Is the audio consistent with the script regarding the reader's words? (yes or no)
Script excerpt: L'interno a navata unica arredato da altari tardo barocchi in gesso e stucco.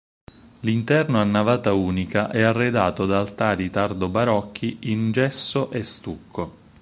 no